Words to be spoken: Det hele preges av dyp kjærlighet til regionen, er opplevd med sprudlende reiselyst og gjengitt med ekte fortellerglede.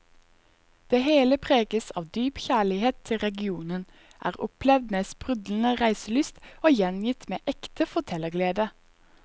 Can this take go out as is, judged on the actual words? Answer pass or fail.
pass